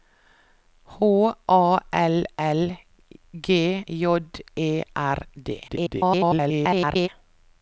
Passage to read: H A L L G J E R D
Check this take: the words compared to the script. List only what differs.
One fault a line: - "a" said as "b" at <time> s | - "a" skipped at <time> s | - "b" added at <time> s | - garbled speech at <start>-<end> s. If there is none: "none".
- garbled speech at 5.7-7.1 s